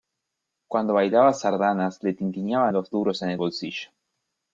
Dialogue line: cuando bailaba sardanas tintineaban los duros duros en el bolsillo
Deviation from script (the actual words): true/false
true